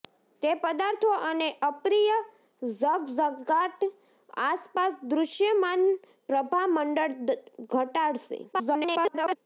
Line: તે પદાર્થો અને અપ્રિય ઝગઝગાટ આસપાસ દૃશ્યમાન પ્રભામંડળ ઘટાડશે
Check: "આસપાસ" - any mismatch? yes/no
no